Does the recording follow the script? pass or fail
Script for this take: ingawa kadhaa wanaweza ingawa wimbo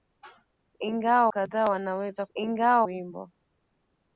pass